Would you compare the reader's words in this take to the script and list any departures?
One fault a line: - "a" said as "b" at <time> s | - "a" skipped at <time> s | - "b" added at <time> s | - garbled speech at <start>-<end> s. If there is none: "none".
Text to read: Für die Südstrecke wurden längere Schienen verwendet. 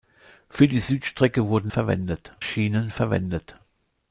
- "längere" said as "verwendet" at 1.7 s